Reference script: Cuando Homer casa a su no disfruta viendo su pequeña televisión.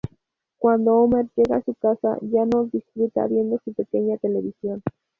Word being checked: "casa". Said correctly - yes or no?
no